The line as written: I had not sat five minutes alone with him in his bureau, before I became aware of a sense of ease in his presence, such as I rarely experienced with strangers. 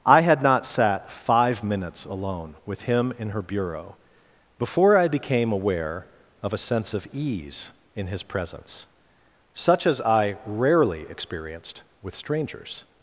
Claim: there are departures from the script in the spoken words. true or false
true